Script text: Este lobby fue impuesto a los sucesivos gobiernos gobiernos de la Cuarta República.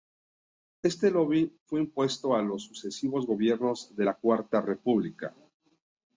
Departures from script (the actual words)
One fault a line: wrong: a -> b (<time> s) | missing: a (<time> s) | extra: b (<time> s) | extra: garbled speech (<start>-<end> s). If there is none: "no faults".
missing: gobiernos (3.9 s)